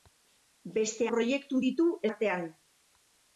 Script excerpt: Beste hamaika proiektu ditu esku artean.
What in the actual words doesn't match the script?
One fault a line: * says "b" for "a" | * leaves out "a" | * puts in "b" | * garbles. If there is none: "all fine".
* leaves out "hamaika"
* leaves out "esku"